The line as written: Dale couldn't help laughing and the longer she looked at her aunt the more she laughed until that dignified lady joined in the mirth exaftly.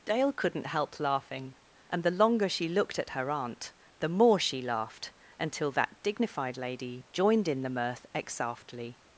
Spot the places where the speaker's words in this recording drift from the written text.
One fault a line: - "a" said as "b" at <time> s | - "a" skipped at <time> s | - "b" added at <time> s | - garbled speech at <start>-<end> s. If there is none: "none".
none